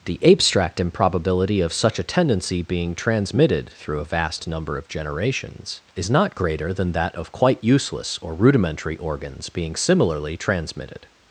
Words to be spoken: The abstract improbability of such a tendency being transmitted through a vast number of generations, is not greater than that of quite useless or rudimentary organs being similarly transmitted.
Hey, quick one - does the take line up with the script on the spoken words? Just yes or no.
yes